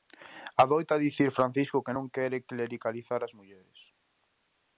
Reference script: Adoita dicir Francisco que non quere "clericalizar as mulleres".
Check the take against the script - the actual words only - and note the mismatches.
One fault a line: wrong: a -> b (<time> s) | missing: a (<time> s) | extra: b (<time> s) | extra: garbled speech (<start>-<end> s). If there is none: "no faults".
no faults